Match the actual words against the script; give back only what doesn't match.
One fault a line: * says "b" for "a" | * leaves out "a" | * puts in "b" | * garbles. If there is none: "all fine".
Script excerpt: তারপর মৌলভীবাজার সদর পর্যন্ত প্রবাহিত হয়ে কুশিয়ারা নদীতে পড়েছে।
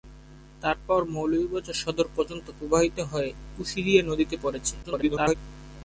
* garbles